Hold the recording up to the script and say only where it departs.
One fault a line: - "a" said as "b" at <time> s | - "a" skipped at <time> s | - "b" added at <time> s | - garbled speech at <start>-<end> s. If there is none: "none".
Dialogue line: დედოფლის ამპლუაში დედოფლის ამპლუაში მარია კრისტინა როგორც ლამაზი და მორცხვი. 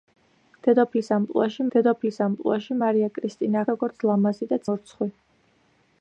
none